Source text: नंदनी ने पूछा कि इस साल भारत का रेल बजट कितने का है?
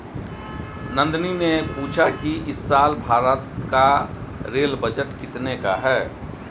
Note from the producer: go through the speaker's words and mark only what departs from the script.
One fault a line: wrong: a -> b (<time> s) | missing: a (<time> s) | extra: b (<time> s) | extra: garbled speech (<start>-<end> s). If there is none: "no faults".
no faults